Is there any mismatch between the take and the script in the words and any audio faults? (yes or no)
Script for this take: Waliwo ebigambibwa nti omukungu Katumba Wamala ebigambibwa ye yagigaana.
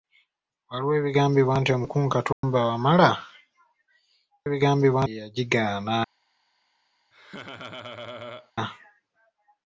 yes